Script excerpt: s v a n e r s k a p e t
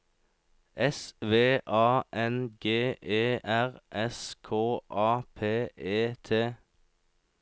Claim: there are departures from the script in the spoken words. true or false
true